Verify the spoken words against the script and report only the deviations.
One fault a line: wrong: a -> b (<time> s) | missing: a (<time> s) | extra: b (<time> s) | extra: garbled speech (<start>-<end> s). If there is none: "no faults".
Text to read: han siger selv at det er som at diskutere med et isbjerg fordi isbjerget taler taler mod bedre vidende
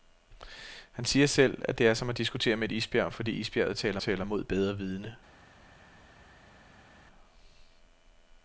no faults